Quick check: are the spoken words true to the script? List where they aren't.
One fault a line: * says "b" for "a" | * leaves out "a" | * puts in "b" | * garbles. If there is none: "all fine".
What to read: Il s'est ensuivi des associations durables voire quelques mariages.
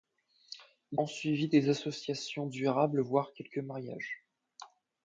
* leaves out "s'est"